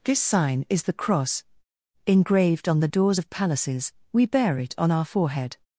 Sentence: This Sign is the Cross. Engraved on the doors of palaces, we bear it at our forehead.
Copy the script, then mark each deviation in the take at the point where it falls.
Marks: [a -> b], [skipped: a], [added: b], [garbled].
This Sign is the Cross. Engraved on the doors of palaces, we bear it [at -> on] our forehead.